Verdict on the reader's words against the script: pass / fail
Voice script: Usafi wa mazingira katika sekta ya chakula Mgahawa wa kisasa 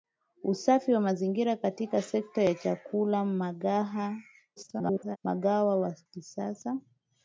fail